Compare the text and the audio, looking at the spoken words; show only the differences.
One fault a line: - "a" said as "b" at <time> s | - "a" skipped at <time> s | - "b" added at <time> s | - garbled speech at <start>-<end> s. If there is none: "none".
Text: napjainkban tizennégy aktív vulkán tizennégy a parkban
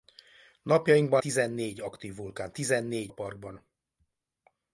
none